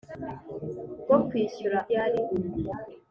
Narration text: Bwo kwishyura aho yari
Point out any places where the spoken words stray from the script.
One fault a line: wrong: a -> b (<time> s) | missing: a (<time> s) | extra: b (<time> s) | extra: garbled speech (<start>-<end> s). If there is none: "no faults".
missing: aho (1.8 s)